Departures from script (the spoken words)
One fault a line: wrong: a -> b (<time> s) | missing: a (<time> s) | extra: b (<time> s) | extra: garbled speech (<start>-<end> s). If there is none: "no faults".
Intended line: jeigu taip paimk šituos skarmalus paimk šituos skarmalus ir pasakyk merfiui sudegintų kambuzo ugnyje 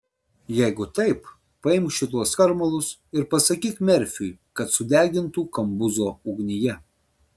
missing: paimk šituos skarmalus (2.9 s)
extra: kad (4.6 s)